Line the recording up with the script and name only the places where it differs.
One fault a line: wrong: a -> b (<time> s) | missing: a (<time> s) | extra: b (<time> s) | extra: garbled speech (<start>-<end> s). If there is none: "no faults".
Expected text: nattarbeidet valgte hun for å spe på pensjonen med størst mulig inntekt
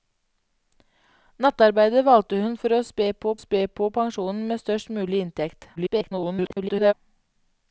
extra: spe på (3.4 s)
extra: garbled speech (5.8-6.9 s)